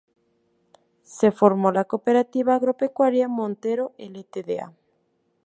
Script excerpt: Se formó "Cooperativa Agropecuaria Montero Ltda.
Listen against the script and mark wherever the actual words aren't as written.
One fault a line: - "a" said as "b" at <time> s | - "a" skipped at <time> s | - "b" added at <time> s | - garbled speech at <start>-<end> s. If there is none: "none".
- "la" added at 1.7 s